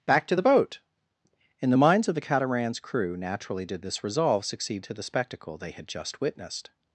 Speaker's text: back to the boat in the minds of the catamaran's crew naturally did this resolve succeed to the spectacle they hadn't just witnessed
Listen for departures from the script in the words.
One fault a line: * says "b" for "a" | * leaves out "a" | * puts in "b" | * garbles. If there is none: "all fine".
* says "had" for "hadn't"